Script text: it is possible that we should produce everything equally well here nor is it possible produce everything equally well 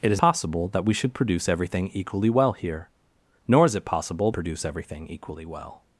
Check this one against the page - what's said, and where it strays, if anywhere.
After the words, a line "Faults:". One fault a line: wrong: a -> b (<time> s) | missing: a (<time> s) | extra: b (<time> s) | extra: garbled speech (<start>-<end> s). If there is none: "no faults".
it is possible that we should produce everything equally well here nor is it possible produce everything equally well
Faults:
no faults